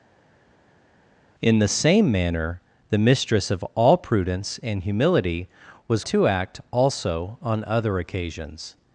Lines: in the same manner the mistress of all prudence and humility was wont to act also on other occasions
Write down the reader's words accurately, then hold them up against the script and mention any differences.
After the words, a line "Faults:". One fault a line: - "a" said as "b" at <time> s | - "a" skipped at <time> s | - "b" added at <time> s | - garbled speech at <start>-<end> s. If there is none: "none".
in the same manner the mistress of all prudence and humility was to act also on other occasions
Faults:
- "wont" skipped at 6.0 s